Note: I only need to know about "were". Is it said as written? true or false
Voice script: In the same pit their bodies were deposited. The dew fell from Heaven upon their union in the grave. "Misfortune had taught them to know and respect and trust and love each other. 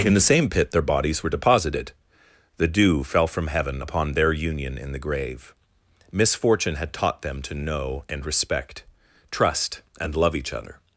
true